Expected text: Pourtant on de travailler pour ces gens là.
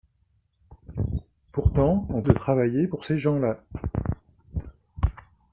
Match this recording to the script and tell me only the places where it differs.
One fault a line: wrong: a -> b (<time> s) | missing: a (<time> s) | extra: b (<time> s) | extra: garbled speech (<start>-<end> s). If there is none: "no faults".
no faults